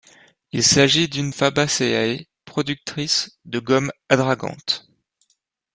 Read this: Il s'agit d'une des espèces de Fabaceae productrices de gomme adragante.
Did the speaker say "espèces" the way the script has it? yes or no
no